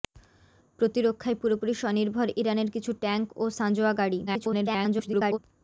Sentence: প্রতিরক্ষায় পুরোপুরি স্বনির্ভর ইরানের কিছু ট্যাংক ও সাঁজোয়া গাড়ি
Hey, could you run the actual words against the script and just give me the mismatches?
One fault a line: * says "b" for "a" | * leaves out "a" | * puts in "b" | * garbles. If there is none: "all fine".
* garbles